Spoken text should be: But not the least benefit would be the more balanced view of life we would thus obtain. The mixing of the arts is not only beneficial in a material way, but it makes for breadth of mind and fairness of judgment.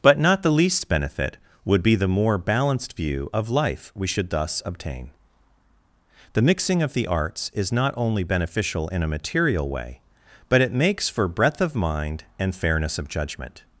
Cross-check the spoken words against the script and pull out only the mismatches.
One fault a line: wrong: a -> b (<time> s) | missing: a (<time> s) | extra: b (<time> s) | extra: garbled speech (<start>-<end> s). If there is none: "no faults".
wrong: would -> should (4.1 s)